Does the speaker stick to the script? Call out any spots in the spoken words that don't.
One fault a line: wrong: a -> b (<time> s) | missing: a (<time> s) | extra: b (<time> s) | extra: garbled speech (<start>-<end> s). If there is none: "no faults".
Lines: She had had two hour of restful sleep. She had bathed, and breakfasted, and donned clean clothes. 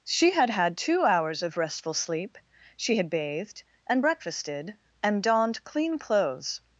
wrong: hour -> hours (1.0 s)